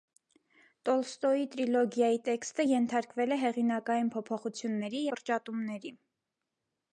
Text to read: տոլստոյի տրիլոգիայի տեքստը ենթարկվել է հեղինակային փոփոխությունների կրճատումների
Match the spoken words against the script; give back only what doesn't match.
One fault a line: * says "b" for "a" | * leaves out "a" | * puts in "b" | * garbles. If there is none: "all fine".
all fine